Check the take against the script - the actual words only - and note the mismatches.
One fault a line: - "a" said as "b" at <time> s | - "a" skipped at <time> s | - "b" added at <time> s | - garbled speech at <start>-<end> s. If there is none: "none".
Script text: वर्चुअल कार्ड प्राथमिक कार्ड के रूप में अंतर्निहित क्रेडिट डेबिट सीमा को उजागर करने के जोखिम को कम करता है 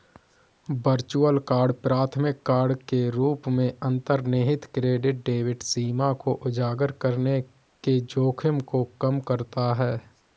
none